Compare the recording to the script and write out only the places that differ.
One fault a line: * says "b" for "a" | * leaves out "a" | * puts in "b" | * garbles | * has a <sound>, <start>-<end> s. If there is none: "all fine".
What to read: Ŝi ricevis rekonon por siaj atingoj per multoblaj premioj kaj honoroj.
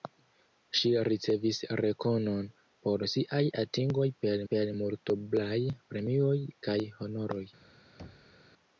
* puts in "per"
* has a thud, 8.0-8.4 s